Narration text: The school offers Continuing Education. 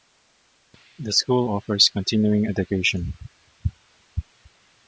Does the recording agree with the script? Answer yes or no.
yes